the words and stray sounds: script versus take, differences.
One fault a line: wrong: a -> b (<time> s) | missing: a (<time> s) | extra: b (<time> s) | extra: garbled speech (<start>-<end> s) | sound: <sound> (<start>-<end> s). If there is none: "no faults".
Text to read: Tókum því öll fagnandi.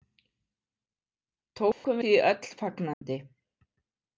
sound: dropout (1.7-1.8 s)
sound: dropout (2.9-3.0 s)